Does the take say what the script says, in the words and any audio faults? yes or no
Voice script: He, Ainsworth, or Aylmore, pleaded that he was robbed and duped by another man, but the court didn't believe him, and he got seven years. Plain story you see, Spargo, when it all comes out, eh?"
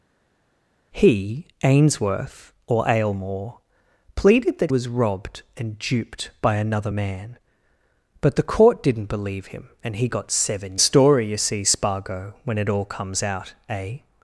no